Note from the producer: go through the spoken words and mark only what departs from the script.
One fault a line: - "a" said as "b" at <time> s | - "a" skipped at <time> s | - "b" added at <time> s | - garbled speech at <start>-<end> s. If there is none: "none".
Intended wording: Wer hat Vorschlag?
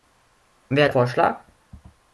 none